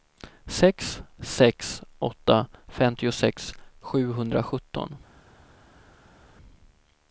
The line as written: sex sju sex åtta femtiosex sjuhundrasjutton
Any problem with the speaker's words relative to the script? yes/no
yes